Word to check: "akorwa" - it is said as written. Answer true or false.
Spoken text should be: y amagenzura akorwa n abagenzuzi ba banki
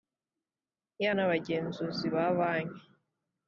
false